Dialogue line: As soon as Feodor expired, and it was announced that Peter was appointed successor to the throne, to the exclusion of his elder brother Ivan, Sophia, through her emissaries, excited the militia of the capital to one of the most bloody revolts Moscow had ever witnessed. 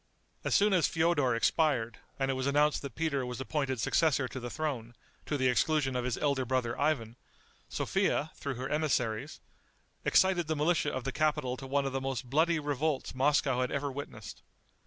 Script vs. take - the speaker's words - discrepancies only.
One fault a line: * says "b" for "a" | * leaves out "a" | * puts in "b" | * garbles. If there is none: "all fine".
all fine